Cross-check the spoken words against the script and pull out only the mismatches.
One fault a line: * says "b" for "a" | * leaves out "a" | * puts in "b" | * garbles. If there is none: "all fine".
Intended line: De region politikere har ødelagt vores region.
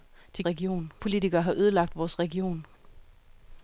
all fine